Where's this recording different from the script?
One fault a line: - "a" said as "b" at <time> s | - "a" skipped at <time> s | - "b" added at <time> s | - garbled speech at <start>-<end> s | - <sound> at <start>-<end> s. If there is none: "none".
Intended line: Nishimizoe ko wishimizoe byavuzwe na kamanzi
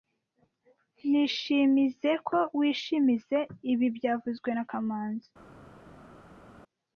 - "ibi" added at 3.7 s